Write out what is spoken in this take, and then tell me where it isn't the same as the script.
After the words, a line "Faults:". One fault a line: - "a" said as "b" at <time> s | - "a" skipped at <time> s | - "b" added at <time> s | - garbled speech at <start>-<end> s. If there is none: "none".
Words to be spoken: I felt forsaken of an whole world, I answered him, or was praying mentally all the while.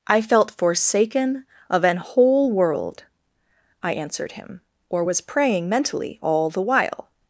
I felt forsaken of an whole world, I answered him, or was praying mentally all the while.
Faults:
none